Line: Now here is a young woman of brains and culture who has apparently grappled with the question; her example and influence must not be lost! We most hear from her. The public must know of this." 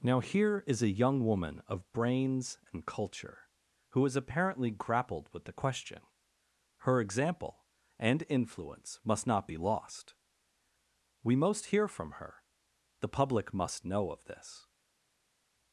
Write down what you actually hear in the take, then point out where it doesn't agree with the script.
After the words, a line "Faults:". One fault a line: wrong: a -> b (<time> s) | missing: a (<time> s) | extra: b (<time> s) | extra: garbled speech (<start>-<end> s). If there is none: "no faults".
Now here is a young woman of brains and culture who has apparently grappled with the question; her example and influence must not be lost! We most hear from her. The public must know of this."
Faults:
no faults